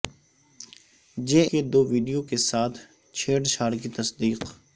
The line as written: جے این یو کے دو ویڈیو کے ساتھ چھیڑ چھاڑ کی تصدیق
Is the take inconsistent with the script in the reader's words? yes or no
yes